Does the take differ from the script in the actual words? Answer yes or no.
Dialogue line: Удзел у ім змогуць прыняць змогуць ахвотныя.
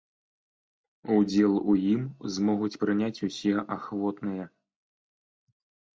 yes